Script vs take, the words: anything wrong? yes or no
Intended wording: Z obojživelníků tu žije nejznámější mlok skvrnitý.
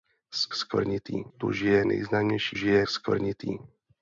yes